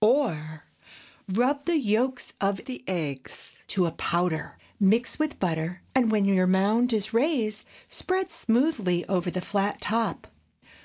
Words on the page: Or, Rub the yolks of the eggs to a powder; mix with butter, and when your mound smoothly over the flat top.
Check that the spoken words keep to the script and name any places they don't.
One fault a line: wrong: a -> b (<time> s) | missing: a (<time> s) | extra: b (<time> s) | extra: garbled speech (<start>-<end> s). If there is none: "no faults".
extra: is raised spread (6.9 s)